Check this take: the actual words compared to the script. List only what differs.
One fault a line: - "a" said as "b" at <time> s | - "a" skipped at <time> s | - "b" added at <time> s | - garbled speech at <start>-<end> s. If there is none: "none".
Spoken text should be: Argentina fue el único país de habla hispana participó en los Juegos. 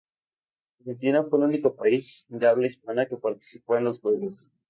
- "que" added at 3.1 s